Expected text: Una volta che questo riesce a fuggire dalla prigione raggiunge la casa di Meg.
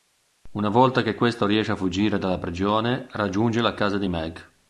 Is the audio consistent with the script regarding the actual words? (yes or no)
yes